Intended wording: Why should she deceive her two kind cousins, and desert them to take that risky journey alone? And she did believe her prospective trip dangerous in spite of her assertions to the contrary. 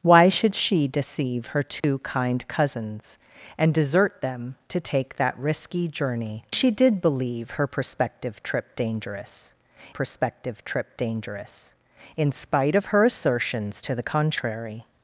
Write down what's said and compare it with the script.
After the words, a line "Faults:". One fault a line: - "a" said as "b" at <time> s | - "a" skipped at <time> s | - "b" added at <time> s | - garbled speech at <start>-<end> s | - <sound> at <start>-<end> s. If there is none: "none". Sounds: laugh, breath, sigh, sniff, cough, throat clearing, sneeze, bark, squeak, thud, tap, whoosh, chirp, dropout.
Why should she deceive her two kind cousins, and desert them to take that risky journey she did believe her prospective trip dangerous prospective trip dangerous in spite of her assertions to the contrary.
Faults:
- dropout at 1.8-1.8 s
- "alone And" skipped at 6.5 s
- "prospective trip dangerous" added at 9.9 s